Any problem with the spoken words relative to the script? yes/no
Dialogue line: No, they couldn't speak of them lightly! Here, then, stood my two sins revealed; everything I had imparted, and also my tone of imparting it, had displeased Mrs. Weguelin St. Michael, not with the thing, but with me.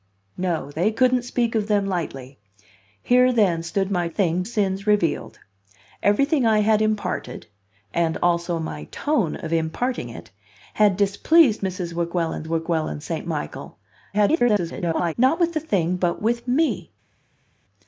yes